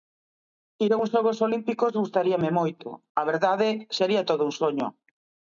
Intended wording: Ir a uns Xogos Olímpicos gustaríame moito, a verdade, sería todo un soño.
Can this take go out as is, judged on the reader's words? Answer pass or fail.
pass